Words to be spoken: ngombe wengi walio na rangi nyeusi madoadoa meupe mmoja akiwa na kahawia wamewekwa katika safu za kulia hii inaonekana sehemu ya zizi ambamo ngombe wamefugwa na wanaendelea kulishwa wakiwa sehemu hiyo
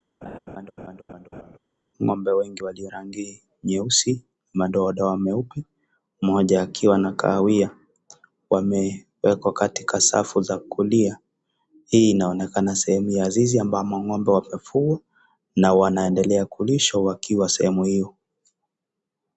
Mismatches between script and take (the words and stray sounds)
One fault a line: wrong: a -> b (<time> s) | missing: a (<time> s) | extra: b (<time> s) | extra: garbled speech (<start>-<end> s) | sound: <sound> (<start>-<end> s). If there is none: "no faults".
sound: laugh (0.2-1.6 s)
missing: na (2.9 s)